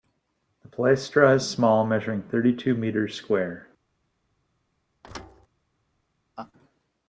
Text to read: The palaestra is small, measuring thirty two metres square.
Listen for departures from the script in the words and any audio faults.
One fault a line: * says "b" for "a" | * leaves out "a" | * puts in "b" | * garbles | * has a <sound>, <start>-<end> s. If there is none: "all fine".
* has a thud, 5.0-5.5 s
* has a laugh, 6.4-6.5 s